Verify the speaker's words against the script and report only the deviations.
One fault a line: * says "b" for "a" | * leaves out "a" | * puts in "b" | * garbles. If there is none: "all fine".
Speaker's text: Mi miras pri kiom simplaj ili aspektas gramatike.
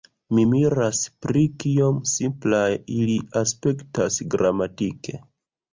all fine